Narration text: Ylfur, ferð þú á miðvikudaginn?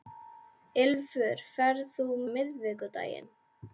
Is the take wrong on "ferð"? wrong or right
right